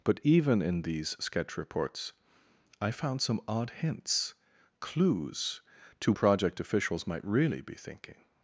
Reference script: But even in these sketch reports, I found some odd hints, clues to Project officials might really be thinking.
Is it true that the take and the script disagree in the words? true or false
false